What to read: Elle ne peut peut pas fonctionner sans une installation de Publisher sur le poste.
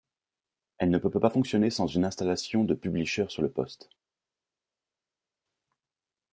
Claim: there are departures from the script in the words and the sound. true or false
false